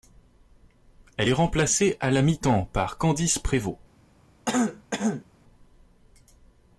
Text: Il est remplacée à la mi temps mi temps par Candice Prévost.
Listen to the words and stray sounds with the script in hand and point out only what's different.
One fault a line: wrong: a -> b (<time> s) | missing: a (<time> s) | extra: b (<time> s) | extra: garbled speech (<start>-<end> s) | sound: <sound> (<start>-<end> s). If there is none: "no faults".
wrong: Il -> Elle (1.2 s)
missing: mi temps (2.6 s)
sound: throat clearing (4.5-5.3 s)